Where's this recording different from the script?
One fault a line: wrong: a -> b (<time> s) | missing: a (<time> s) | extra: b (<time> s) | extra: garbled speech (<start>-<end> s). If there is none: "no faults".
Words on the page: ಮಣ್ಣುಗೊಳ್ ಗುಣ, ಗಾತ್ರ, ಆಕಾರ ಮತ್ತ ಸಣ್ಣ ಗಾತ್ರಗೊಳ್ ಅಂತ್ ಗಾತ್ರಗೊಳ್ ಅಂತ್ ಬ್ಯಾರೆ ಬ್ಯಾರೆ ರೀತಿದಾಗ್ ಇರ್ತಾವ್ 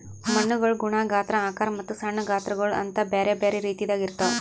missing: ಗಾತ್ರಗೊಳ್ ಅಂತ್ (3.0 s)